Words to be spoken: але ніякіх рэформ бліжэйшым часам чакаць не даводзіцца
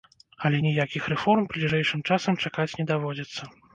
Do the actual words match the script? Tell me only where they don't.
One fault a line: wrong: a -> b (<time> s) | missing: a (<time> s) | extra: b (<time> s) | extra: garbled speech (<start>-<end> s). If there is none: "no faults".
no faults